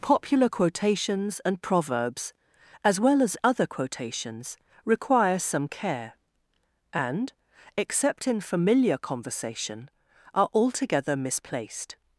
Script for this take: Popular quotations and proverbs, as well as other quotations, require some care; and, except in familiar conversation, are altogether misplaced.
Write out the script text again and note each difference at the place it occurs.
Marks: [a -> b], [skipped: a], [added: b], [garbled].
Popular quotations and proverbs, as well as other quotations, require some care; and, except in familiar conversation, are altogether misplaced.